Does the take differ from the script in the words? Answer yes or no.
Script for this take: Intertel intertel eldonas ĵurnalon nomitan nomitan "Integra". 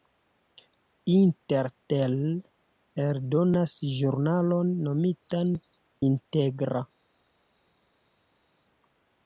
yes